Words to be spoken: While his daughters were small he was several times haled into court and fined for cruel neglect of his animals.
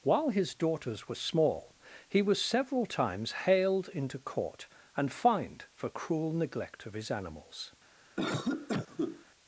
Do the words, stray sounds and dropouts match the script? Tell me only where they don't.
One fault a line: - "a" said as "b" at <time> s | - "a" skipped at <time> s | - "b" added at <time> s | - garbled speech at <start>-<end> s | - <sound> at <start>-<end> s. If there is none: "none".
- cough at 8.2-9.3 s